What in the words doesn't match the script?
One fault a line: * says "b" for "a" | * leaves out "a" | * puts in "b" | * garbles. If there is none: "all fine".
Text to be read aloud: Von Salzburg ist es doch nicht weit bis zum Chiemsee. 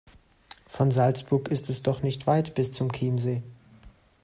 all fine